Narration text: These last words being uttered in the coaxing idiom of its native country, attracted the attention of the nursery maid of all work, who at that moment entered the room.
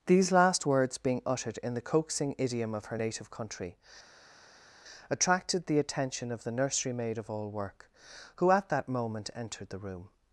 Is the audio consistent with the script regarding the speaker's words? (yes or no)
no